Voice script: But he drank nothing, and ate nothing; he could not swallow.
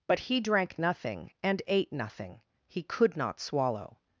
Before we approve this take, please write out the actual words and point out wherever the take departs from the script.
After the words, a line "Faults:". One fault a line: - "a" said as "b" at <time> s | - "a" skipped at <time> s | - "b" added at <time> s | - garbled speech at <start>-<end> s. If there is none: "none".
But he drank nothing, and ate nothing; he could not swallow.
Faults:
none